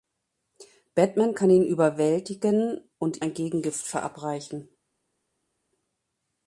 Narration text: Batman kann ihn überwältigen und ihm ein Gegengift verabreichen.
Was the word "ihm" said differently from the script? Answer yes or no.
yes